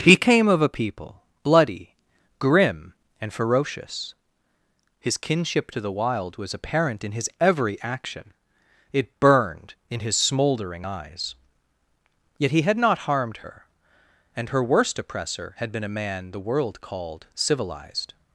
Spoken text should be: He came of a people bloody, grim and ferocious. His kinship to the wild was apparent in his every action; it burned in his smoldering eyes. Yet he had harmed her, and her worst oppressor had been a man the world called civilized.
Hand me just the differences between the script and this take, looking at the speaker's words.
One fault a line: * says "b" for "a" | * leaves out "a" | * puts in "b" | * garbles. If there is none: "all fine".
* puts in "not"